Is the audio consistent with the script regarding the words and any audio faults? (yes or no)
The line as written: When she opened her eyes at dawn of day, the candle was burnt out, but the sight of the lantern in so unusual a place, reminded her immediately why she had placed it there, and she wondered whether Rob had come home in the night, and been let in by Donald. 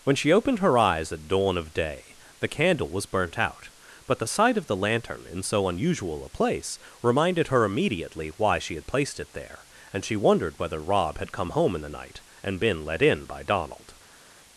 yes